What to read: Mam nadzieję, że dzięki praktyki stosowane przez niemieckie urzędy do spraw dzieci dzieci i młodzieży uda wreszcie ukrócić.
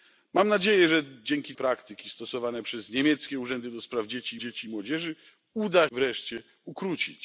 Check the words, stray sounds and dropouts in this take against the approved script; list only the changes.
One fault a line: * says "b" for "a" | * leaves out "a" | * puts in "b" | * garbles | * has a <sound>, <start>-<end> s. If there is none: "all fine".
all fine